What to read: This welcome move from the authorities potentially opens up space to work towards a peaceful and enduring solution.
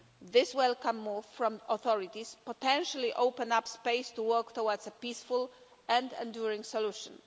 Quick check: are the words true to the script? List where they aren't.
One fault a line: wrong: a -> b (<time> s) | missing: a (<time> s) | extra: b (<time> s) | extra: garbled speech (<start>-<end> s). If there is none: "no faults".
no faults